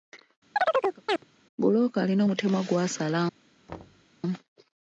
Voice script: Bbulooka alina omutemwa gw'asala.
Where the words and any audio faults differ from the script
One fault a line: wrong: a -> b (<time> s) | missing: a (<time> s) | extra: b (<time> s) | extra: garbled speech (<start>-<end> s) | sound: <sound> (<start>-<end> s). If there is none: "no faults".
sound: chirp (0.6-1.2 s)
sound: thud (3.7-4.1 s)